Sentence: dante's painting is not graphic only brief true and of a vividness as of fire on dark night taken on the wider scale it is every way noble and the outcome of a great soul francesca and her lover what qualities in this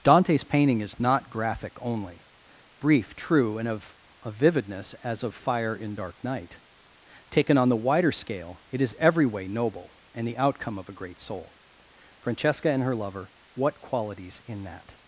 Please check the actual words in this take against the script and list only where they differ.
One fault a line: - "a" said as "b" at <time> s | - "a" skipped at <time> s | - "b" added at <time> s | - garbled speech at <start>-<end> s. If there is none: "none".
- "on" said as "in" at 5.8 s
- "this" said as "that" at 14.6 s